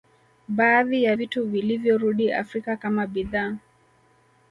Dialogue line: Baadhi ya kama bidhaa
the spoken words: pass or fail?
fail